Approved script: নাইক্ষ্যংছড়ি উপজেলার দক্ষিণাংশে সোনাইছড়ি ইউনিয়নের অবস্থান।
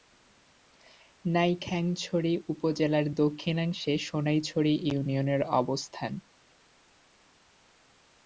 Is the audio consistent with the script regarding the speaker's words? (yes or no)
yes